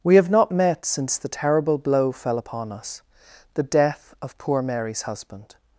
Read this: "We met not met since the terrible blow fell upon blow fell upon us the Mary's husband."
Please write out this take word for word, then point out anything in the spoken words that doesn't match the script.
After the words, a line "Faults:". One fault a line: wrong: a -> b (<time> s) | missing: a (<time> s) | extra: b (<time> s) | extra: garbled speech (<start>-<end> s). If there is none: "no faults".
"We have not met since the terrible blow fell upon us the death of poor Mary's husband."
Faults:
wrong: met -> have (0.1 s)
wrong: blow fell upon us the -> us the death of poor (2.7 s)